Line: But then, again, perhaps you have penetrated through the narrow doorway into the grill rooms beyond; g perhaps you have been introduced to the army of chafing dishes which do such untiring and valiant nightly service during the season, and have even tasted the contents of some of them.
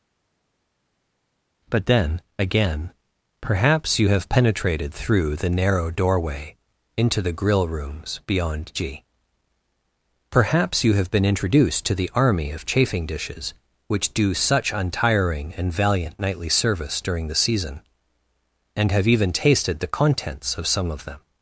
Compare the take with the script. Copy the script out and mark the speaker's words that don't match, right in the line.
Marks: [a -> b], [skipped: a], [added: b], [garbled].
But then, again, perhaps you have penetrated through the narrow doorway into the grill rooms beyond; g perhaps you have been introduced to the army of chafing dishes which do such untiring and valiant nightly service during the season, and have even tasted the contents of some of them.